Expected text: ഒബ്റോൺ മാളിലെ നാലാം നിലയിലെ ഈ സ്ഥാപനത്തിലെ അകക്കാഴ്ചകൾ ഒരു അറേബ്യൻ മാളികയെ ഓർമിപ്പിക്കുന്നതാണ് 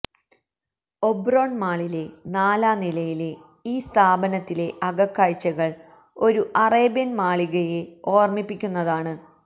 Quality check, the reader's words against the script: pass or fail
pass